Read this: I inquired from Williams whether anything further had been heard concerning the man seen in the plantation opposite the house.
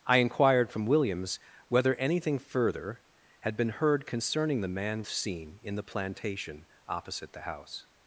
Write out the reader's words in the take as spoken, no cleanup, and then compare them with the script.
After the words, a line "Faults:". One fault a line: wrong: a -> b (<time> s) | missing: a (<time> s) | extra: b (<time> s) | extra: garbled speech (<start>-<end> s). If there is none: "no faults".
I inquired from Williams whether anything further had been heard concerning the man seen in the plantation opposite the house.
Faults:
no faults